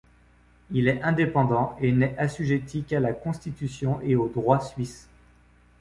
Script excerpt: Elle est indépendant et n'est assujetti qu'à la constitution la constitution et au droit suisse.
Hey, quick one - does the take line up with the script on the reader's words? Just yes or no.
no